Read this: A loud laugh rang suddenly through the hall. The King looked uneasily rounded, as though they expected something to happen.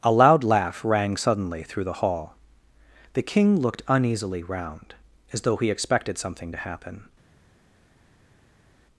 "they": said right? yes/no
no